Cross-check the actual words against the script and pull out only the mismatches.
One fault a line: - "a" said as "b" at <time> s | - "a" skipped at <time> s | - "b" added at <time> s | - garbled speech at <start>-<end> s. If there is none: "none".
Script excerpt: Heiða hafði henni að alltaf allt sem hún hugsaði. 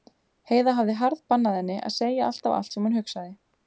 - "harðbannað" added at 1.0 s
- "segja" added at 2.0 s